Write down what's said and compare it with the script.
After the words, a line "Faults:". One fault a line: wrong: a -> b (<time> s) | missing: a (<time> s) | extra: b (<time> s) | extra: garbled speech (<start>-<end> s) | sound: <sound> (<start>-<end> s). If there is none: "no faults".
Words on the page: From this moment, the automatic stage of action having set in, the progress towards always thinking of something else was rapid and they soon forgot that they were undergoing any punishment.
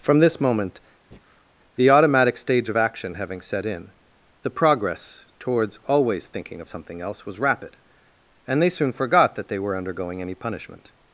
From this moment, the automatic stage of action having set in, the progress towards always thinking of something else was rapid and they soon forgot that they were undergoing any punishment.
Faults:
sound: breath (1.1-1.5 s)